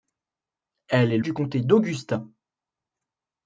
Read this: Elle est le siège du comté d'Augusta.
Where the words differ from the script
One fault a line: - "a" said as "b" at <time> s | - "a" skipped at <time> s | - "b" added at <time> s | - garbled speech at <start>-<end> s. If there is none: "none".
- "le siège" skipped at 1.2 s